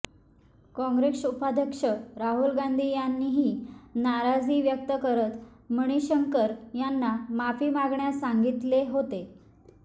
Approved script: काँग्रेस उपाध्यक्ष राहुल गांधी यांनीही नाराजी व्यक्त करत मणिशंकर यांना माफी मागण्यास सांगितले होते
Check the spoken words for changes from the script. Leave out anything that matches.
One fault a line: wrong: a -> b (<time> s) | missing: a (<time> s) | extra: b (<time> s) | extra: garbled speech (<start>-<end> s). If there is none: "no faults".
no faults